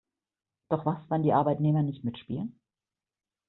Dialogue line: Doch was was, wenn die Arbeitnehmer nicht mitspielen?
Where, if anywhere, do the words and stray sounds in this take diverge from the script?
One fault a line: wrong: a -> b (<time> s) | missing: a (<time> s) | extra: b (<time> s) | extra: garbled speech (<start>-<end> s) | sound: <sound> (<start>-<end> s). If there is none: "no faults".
missing: was (1.0 s)